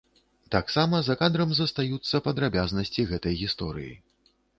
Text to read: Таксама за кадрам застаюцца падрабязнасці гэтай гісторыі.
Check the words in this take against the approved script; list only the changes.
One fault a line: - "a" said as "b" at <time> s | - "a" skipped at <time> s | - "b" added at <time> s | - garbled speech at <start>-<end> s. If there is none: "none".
none